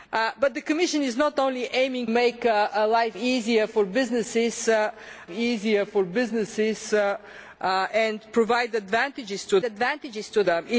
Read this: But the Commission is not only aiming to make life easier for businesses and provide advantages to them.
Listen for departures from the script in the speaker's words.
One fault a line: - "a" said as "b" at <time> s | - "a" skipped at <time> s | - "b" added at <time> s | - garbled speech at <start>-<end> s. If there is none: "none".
- "to" skipped at 2.1 s
- "easier for businesses" added at 5.3 s
- "advantages to" added at 9.6 s